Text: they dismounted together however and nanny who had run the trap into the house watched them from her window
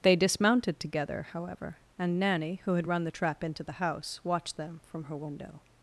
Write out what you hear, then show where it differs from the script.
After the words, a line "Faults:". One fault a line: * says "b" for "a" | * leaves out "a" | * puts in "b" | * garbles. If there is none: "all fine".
they dismounted together however and nanny who had run the trap into the house watched them from her window
Faults:
all fine